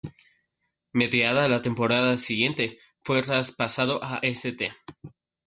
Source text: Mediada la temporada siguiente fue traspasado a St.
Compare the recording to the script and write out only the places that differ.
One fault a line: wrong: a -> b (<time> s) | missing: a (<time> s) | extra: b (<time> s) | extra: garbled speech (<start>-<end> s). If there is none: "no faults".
no faults